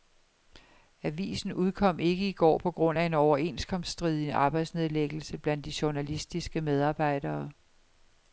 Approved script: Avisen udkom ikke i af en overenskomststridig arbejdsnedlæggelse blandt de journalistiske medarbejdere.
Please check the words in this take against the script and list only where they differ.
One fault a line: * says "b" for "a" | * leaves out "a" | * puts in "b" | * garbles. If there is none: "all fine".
* puts in "går på grund"